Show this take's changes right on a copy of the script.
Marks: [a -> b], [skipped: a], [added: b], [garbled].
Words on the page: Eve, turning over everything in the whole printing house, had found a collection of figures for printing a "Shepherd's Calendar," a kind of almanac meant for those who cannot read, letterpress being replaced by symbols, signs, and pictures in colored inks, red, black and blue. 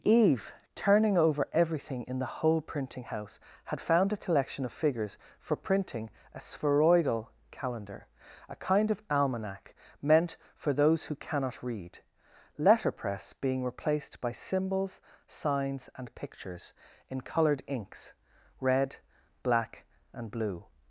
Eve, turning over everything in the whole printing house, had found a collection of figures for printing a ["Shepherd's -> Spheroidal] Calendar," a kind of almanac meant for those who cannot read, letterpress being replaced by symbols, signs, and pictures in colored inks, red, black and blue.